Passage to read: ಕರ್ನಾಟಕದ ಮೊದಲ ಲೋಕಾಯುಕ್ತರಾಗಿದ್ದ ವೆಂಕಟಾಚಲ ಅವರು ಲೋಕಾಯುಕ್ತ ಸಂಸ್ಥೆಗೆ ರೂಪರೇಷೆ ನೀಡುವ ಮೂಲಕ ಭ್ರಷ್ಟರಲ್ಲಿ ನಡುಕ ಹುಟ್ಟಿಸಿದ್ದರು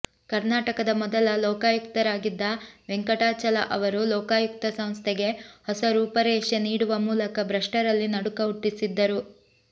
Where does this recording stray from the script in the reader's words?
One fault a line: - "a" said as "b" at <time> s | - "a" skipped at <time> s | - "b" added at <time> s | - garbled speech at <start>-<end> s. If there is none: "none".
- "ಹೊಸ" added at 5.7 s